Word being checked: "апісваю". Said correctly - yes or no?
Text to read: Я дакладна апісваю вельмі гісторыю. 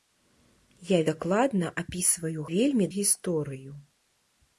yes